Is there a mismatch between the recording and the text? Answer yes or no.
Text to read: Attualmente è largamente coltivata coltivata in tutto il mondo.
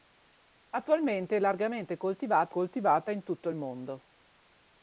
no